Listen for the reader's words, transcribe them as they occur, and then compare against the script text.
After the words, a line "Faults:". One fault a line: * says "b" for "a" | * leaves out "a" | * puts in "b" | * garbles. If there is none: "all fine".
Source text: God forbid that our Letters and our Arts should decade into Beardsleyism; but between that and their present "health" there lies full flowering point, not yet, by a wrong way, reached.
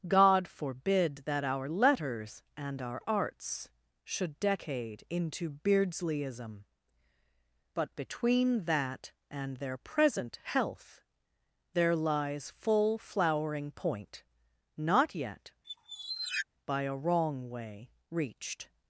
God forbid that our Letters and our Arts should decade into Beardsleyism; but between that and their present "health" there lies full flowering point, not yet, by a wrong way, reached.
Faults:
all fine